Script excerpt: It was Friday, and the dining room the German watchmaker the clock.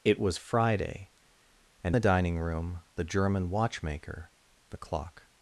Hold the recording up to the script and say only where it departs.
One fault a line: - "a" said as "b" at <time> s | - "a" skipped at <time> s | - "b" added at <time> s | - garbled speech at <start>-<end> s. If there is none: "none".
none